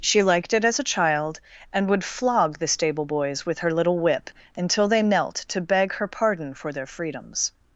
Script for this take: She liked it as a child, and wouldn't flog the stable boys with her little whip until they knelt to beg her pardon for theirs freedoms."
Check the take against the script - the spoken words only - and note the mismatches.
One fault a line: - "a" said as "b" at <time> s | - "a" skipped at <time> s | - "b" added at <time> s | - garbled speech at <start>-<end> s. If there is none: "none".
- "wouldn't" said as "would" at 1.9 s
- "theirs" said as "their" at 6.7 s